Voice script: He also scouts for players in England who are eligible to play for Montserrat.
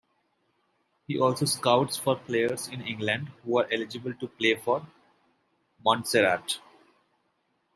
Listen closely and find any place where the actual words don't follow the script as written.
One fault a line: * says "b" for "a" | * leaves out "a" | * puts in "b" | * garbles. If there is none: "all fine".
all fine